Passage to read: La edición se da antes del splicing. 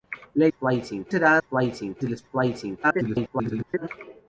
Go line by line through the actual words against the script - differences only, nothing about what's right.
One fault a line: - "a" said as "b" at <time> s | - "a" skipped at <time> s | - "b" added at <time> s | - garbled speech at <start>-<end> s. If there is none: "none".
- "edición" said as "splicing" at 0.5 s
- "antes" said as "splicing" at 1.4 s
- garbled speech at 2.8-3.9 s